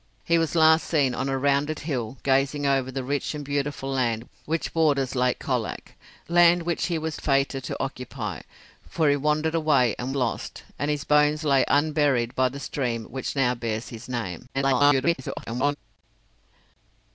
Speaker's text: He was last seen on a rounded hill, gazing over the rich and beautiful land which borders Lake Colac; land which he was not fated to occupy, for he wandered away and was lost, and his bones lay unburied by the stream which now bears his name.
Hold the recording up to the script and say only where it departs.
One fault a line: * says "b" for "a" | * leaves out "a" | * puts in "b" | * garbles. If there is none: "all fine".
* leaves out "not"
* leaves out "was"
* garbles